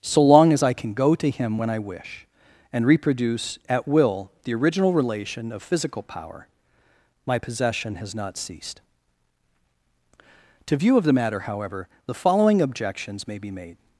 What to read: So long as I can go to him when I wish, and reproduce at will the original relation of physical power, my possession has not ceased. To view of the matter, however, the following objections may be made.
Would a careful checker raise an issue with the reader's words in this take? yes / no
no